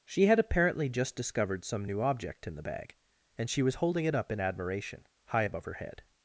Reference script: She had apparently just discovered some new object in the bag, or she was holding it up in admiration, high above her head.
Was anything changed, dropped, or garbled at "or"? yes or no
yes